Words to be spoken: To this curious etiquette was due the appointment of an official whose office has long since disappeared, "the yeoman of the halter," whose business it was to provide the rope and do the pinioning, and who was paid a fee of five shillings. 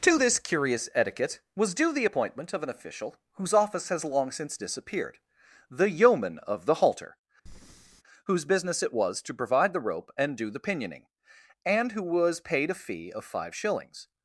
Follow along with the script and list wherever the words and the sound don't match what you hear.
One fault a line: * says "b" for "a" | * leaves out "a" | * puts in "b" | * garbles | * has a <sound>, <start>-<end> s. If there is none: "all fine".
* has a breath, 7.5-8.0 s